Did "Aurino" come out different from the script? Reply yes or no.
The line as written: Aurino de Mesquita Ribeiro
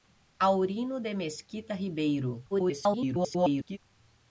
no